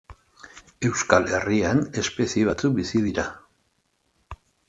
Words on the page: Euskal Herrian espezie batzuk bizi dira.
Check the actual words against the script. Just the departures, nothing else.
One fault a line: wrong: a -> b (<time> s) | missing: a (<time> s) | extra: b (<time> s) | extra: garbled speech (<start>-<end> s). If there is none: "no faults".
no faults